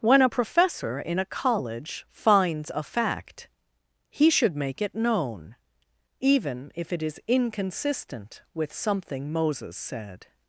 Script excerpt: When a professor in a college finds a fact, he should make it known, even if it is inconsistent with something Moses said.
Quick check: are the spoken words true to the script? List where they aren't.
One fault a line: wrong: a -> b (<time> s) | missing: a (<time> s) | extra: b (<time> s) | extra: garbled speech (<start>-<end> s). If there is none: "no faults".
no faults